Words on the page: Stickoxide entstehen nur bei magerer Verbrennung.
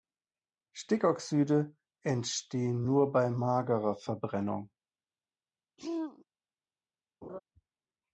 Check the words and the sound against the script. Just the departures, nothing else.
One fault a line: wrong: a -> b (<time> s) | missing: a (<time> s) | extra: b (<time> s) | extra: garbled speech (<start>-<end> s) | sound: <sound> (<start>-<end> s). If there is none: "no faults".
sound: throat clearing (5.8-6.3 s)
sound: laugh (7.2-7.4 s)